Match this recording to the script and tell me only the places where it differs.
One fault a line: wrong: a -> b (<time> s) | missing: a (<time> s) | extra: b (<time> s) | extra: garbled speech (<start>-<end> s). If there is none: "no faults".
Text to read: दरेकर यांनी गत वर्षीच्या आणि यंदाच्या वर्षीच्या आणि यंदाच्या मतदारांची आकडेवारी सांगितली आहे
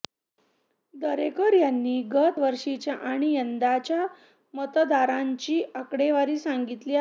missing: वर्षीच्या आणि यंदाच्या (4.1 s)